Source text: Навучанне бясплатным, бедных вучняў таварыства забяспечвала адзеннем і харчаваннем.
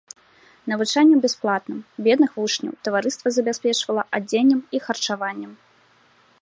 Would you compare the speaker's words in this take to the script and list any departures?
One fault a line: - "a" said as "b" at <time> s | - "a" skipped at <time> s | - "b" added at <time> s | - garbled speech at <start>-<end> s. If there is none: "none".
none